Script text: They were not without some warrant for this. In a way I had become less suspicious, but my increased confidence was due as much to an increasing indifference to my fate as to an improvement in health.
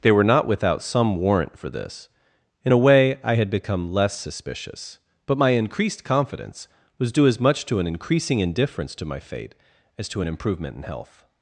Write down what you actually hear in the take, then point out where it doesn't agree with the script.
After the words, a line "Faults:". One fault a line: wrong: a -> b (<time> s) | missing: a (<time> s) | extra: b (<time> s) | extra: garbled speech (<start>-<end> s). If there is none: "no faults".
They were not without some warrant for this. In a way I had become less suspicious, but my increased confidence was due as much to an increasing indifference to my fate as to an improvement in health.
Faults:
no faults